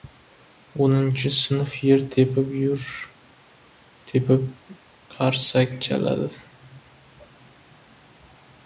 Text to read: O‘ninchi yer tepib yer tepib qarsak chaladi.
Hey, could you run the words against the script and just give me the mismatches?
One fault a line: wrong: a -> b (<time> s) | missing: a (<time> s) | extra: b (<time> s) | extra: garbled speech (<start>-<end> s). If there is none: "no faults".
extra: sinf (1.4 s)